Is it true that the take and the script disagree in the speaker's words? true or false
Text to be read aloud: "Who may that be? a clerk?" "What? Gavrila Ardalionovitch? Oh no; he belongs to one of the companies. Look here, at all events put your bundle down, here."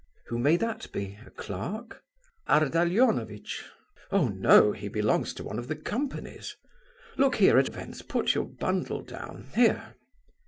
true